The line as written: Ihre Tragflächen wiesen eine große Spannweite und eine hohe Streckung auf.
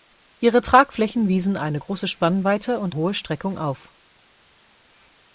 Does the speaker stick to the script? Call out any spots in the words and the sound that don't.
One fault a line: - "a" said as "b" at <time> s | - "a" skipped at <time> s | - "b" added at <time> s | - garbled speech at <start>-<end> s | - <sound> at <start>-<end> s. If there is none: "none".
- "eine" skipped at 2.9 s